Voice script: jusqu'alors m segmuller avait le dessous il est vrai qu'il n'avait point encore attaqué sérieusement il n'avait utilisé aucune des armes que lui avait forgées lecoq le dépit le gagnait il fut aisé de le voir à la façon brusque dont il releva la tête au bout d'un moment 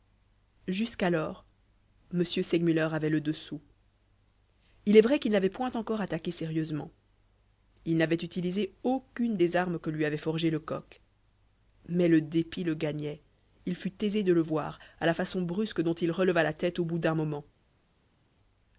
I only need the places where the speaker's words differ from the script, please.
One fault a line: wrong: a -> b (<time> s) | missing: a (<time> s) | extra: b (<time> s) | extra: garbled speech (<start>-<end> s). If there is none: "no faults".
extra: mais (11.9 s)